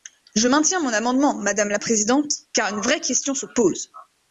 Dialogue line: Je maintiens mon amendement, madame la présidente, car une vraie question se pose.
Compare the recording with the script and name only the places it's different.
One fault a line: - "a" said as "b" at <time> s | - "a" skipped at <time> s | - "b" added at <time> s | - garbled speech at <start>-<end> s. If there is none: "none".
none